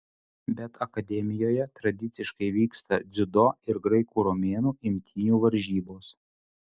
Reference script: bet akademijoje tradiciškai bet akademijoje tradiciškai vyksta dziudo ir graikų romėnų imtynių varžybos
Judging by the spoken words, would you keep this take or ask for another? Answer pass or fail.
fail